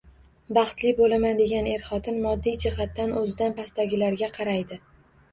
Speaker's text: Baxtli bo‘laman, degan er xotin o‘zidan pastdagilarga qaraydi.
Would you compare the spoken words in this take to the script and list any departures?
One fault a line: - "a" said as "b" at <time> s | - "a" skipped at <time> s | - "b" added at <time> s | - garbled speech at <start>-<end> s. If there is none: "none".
- "moddiy jihatdan" added at 2.2 s